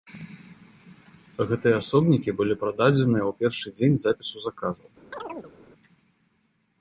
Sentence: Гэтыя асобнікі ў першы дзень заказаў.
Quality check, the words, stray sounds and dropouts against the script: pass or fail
fail